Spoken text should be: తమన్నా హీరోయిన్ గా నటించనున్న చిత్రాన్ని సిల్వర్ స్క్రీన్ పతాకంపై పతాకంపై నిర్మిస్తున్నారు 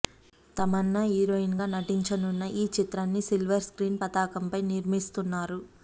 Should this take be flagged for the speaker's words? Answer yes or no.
yes